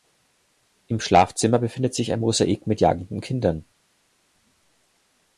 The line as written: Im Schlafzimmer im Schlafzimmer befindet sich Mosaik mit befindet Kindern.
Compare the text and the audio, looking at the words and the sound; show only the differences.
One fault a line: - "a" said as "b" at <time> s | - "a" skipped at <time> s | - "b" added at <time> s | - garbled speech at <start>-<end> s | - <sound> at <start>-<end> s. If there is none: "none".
- "im Schlafzimmer" skipped at 1.6 s
- "ein" added at 2.1 s
- "befindet" said as "jagenden" at 2.8 s